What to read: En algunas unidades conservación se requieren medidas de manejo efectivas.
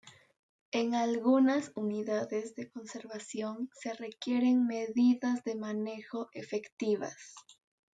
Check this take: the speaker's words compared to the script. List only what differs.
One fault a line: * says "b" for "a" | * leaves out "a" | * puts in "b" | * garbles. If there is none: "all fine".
* puts in "de"